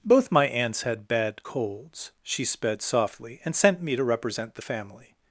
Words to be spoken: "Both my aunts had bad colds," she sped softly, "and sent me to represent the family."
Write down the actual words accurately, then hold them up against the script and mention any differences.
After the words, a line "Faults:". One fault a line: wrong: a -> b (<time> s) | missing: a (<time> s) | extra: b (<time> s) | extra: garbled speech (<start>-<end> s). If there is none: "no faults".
"Both my aunts had bad colds," she sped softly, "and sent me to represent the family."
Faults:
no faults